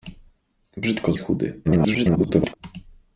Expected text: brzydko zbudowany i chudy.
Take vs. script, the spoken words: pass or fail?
fail